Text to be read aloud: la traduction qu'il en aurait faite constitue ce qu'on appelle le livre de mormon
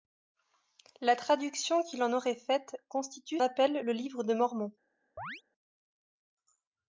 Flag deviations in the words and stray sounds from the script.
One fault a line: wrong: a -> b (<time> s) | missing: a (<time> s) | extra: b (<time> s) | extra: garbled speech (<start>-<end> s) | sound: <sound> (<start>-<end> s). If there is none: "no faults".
missing: ce qu'on (3.4 s)
sound: chirp (5.2-5.4 s)